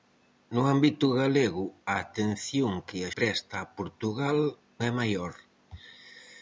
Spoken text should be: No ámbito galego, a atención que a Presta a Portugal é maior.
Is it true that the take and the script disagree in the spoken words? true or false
false